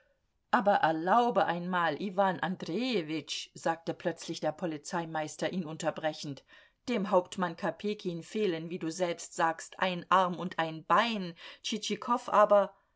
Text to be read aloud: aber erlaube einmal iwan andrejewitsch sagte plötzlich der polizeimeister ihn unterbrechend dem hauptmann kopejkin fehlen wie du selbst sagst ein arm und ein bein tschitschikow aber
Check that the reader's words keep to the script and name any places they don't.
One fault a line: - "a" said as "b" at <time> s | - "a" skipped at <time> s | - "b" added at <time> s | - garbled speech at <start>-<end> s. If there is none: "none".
none